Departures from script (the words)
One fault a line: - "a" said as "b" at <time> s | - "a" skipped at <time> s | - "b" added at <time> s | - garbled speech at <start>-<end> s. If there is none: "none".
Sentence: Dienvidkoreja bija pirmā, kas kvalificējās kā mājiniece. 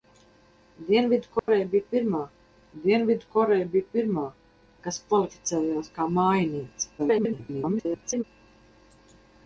- "dienvidkoreja bija pirmā" added at 2.8 s
- garbled speech at 7.0-8.2 s